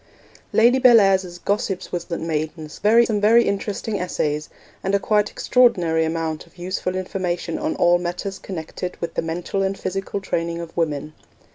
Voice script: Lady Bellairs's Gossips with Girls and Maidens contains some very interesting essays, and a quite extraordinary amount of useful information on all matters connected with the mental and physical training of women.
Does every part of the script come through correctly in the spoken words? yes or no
no